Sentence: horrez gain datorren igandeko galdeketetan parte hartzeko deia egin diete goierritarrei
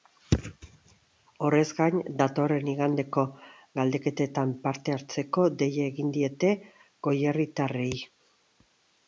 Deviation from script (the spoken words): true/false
false